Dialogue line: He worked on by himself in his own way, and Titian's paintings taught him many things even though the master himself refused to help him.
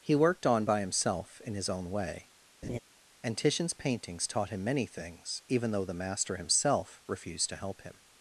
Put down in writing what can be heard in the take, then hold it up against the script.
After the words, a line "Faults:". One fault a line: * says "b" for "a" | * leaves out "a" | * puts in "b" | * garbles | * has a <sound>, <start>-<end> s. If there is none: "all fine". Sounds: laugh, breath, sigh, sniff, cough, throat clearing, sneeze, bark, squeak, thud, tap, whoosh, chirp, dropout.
He worked on by himself in his own way, and Titian's paintings taught him many things even though the master himself refused to help him.
Faults:
* has a laugh, 2.6-2.8 s